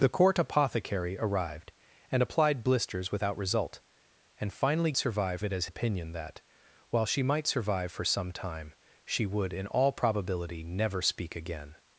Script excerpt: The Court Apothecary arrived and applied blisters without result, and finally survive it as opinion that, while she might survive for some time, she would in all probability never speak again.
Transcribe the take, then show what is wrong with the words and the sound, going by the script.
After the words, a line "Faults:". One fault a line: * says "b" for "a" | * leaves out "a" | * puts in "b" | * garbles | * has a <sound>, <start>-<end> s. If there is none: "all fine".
The Court Apothecary arrived and applied blisters without result, and finally survive it as opinion that, while she might survive for some time, she would in all probability never speak again.
Faults:
all fine